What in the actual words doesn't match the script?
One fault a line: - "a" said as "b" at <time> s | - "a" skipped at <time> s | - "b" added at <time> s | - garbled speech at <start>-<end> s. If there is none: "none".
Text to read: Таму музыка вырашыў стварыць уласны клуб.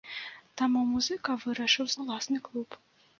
- "стварыць" skipped at 1.9 s